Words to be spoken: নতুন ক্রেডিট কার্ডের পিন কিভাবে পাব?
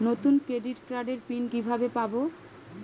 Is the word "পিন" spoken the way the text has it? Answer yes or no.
yes